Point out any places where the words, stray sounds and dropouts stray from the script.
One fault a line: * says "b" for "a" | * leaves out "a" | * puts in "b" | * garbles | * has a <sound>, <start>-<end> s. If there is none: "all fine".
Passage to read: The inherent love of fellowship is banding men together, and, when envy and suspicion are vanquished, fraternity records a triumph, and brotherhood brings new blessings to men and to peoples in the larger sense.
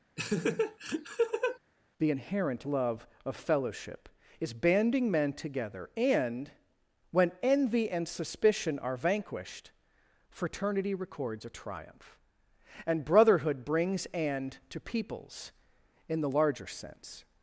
* has a laugh, 0.2-1.6 s
* leaves out "new blessings to men"